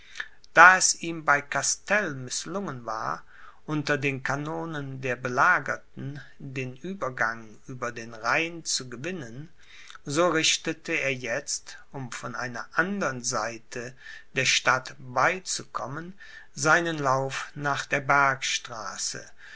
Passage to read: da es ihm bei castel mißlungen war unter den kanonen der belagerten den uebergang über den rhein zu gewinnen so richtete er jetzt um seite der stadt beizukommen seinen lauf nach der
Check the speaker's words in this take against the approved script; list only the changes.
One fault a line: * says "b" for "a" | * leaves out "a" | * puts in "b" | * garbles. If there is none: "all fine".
* puts in "von einer andern"